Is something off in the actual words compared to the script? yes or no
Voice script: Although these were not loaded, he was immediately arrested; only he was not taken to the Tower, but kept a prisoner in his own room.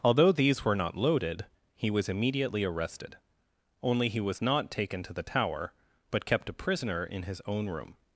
no